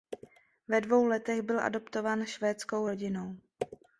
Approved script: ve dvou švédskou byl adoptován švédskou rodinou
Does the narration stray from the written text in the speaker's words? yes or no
yes